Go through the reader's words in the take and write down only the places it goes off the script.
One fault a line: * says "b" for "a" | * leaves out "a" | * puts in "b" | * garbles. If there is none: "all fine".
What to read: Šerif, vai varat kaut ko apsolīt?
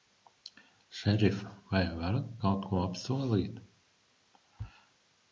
all fine